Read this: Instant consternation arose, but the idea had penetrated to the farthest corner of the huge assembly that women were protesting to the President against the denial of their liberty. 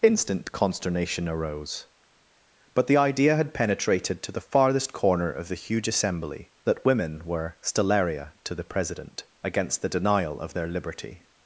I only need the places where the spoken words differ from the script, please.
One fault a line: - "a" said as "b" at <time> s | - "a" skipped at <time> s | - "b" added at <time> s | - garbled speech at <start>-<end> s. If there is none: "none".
- "protesting" said as "stellaria" at 7.6 s